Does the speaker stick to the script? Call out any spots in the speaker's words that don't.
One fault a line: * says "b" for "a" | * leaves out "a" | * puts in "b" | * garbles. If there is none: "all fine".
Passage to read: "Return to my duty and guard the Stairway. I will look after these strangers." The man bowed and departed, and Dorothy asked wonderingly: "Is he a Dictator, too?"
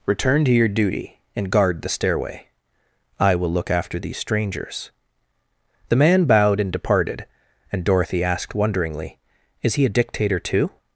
* says "your" for "my"